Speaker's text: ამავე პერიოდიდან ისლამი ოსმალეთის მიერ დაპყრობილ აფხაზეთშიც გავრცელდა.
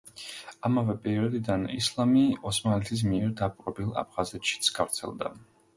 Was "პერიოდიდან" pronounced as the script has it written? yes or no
yes